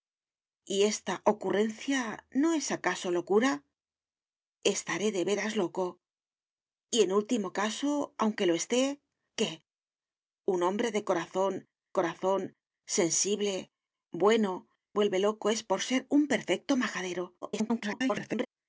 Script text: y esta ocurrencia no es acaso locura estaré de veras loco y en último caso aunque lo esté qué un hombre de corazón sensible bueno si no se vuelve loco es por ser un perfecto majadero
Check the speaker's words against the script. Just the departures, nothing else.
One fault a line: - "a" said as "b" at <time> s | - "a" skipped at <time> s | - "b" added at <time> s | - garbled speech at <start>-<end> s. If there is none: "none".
- "corazón" added at 11.9 s
- "si no se" skipped at 14.7 s
- garbled speech at 17.4-18.5 s